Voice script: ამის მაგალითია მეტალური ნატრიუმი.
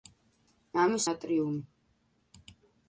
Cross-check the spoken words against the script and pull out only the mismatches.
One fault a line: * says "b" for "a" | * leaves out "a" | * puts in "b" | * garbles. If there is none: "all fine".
* leaves out "მაგალითია მეტალური"